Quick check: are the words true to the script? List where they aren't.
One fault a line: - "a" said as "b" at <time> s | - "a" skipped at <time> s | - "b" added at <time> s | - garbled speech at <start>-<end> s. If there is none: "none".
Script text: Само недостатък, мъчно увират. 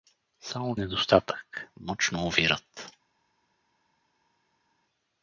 none